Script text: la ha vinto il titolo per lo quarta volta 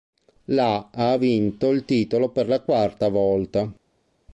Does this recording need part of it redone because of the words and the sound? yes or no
yes